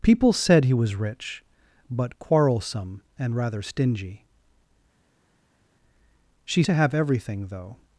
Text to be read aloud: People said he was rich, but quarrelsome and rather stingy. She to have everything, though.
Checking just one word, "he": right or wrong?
right